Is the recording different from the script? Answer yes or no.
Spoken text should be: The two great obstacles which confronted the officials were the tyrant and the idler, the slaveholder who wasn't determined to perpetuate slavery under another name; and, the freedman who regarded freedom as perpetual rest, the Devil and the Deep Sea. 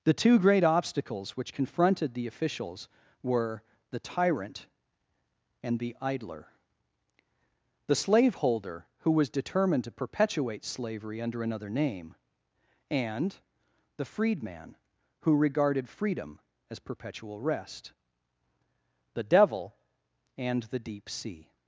yes